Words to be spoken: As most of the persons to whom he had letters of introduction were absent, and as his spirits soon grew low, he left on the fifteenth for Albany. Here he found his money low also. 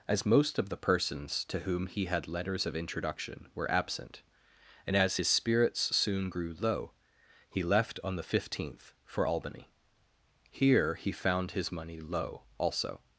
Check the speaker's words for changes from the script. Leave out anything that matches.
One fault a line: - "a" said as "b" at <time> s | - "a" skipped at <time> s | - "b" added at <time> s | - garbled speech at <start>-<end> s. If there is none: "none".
none